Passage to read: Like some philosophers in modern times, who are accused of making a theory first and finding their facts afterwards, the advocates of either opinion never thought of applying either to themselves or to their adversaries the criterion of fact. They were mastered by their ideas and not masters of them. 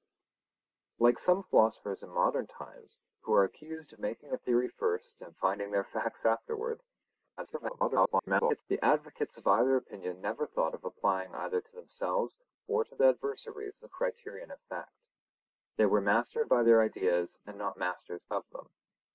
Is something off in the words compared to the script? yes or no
yes